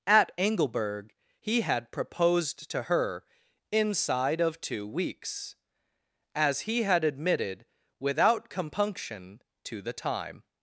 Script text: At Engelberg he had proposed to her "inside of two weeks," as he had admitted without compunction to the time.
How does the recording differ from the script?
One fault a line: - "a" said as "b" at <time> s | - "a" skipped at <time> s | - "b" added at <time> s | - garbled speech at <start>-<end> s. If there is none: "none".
none